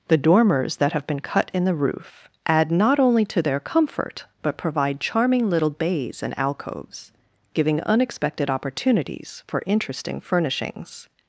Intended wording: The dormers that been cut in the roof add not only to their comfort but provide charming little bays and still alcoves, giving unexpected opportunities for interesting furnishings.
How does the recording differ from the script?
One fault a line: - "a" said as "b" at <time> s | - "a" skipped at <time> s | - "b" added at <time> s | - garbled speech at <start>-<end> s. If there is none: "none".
- "have" added at 0.9 s
- "still" skipped at 6.4 s